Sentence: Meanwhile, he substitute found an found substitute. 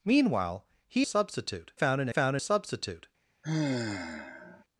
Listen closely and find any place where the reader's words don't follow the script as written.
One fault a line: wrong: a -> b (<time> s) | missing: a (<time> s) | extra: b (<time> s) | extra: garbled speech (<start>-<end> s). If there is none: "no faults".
no faults